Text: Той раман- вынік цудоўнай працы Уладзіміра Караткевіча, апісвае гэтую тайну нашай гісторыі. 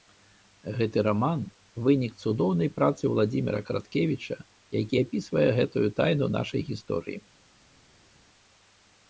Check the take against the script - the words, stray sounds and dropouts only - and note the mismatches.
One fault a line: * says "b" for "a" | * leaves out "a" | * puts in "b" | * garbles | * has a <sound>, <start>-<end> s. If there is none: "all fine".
* says "Гэты" for "Той"
* puts in "які"